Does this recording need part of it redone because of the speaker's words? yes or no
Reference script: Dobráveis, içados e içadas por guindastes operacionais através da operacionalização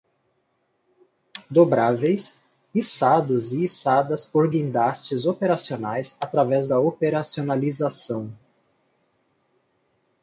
no